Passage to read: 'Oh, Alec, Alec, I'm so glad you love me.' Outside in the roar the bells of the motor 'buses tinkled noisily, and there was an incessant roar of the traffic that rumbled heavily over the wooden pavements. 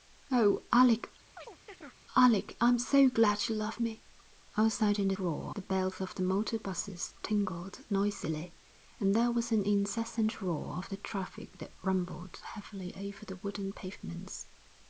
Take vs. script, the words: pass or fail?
pass